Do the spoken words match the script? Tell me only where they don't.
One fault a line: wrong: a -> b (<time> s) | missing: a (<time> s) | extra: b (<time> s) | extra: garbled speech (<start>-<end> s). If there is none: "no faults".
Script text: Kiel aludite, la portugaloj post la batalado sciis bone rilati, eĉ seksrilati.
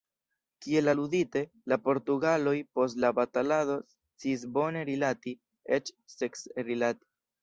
no faults